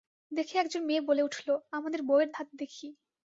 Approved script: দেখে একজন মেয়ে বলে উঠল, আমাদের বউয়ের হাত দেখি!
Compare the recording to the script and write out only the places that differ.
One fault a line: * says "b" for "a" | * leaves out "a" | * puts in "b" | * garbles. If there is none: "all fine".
all fine